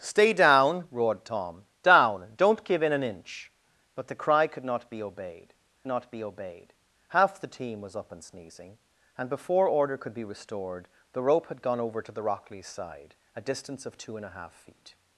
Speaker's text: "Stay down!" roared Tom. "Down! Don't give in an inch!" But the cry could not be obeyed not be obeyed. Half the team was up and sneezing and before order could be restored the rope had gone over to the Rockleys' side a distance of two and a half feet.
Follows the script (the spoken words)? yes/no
yes